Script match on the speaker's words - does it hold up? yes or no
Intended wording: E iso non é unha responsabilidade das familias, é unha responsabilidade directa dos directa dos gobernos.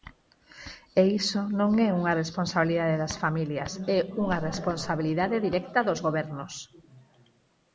no